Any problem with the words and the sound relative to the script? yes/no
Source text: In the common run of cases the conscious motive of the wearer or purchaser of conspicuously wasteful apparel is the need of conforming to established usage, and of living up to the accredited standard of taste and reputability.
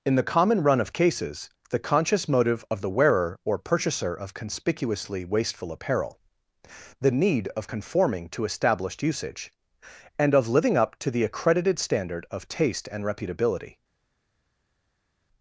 yes